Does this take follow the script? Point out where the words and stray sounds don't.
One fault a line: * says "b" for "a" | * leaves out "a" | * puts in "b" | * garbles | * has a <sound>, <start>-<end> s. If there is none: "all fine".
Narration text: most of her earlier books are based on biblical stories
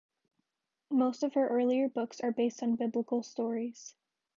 all fine